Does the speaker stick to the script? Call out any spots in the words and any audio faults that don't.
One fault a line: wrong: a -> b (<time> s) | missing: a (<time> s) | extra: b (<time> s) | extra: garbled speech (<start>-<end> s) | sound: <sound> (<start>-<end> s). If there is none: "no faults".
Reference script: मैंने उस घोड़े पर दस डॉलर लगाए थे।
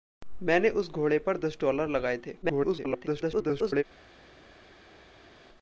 extra: garbled speech (2.4-3.8 s)